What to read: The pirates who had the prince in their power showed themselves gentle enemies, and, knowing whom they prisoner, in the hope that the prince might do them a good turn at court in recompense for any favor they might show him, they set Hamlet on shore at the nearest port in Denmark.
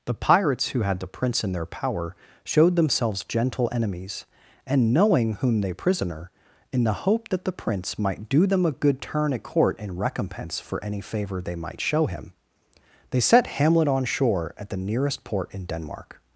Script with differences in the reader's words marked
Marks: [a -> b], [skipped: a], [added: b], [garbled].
The pirates who had the prince in their power showed themselves gentle enemies, and, knowing whom they prisoner, in the hope that the prince might do them a good turn at court in recompense for any favor they might show him, they set Hamlet on shore at the nearest port in Denmark.